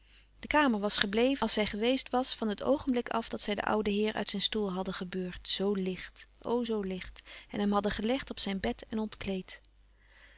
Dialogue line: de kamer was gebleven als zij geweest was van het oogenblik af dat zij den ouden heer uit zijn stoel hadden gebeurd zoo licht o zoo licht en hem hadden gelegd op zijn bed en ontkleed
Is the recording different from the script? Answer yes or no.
no